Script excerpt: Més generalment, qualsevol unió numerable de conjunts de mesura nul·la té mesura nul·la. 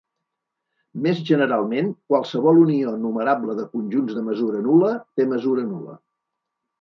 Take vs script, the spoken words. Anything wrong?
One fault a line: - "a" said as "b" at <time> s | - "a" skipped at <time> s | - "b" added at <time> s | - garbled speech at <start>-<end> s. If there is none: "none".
none